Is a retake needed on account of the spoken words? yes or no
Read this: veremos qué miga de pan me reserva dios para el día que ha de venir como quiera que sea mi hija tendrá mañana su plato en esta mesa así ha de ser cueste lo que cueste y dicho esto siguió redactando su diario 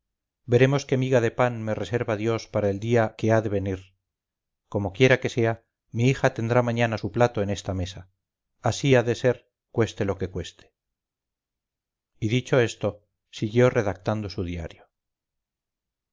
no